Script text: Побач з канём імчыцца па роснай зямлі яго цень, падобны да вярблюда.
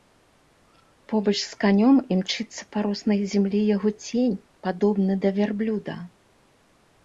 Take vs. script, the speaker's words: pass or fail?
pass